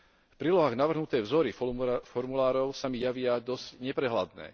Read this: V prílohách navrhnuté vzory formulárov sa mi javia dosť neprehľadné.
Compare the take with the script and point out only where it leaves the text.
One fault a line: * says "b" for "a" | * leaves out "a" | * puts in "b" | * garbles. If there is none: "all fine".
all fine